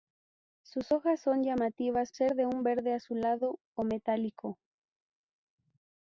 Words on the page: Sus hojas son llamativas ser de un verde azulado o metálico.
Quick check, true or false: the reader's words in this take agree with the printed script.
true